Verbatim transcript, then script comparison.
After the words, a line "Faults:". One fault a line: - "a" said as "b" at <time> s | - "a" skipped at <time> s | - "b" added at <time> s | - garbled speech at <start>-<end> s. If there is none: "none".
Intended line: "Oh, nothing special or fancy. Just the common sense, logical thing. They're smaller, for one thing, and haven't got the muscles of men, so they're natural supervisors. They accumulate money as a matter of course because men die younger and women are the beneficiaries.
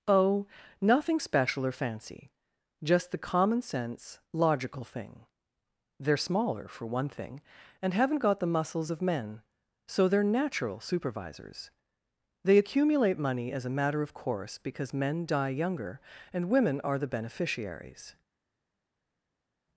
"Oh, nothing special or fancy. Just the common sense, logical thing. They're smaller, for one thing, and haven't got the muscles of men, so they're natural supervisors. They accumulate money as a matter of course because men die younger and women are the beneficiaries.
Faults:
none